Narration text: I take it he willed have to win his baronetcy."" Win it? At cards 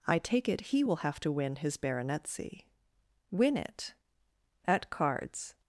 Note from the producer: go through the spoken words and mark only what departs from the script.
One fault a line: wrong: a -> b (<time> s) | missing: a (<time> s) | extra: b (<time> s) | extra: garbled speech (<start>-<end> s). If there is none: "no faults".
wrong: willed -> will (0.8 s)